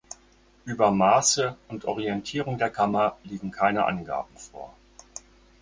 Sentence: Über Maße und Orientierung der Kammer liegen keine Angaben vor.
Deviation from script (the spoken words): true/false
false